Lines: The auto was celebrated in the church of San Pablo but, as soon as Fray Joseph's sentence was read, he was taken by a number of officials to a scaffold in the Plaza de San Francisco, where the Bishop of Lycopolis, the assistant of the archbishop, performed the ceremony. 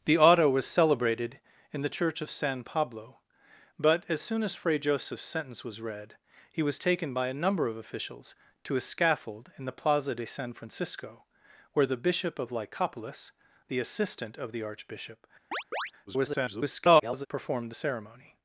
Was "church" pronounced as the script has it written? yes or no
yes